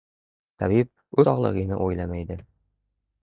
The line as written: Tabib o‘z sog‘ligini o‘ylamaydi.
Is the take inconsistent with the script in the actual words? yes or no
yes